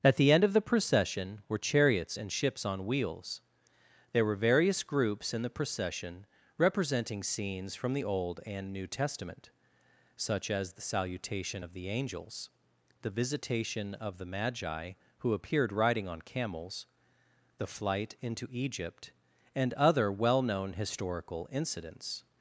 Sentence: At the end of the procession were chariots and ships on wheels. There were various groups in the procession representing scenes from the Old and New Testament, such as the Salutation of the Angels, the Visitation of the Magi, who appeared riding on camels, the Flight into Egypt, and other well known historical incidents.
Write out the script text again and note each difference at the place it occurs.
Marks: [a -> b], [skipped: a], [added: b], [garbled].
At the end of the procession were chariots and ships on wheels. There were various groups in the procession representing scenes from the Old and New Testament, such as the Salutation of the Angels, the Visitation of the Magi, who appeared riding on camels, the Flight into Egypt, and other well known historical incidents.